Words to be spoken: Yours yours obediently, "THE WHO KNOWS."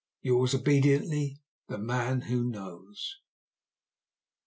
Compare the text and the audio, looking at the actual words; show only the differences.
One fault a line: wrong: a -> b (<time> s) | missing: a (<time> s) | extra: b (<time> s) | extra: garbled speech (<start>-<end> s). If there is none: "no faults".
missing: yours (0.6 s)
extra: MAN (1.8 s)